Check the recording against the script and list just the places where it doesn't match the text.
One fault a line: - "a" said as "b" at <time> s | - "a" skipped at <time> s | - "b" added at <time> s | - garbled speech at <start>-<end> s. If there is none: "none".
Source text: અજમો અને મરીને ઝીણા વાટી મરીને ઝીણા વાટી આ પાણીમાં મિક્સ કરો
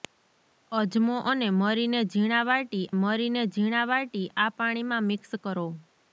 none